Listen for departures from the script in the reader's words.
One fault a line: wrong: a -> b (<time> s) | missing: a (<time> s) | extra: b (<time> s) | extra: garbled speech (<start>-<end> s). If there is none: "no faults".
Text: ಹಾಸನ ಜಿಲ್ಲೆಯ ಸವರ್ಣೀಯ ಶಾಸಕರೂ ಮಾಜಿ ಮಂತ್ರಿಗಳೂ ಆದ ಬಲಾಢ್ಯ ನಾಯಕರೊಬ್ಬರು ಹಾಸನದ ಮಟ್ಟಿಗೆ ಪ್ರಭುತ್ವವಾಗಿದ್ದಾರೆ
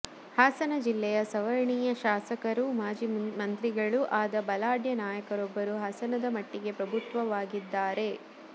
no faults